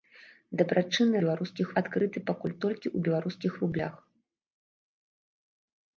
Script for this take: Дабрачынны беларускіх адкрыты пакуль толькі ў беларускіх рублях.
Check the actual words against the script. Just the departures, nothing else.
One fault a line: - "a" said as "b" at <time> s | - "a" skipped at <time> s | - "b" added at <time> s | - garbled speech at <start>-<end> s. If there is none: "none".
none